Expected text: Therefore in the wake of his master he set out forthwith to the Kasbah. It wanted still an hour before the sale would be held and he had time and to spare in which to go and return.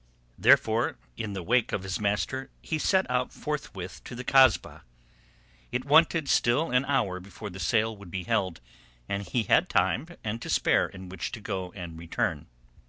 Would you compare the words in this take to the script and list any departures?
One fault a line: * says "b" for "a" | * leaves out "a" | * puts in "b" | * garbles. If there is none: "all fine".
all fine